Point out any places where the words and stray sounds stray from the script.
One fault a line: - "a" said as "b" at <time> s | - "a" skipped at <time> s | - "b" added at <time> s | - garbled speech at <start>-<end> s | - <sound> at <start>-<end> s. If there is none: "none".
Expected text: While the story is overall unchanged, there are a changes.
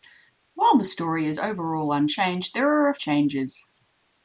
none